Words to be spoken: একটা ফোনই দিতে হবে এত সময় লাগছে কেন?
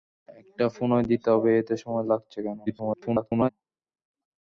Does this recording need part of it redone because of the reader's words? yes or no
yes